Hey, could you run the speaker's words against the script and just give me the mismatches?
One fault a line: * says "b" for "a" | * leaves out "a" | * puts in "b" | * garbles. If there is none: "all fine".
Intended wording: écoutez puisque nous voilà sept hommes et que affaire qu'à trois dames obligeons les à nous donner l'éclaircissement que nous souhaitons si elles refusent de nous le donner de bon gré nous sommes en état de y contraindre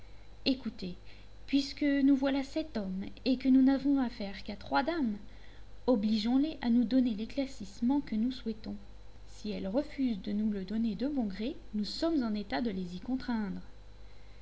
* puts in "nous n'avons"
* puts in "les"